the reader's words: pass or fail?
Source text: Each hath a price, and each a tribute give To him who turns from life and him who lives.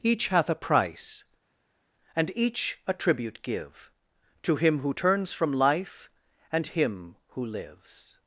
pass